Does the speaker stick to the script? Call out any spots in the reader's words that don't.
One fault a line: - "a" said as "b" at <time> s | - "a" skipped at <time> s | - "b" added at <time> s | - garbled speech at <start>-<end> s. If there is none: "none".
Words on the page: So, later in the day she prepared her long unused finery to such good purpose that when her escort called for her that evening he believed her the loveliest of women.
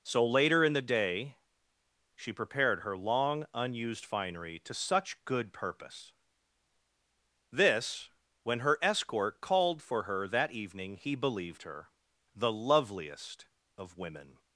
- "that" said as "this" at 7.5 s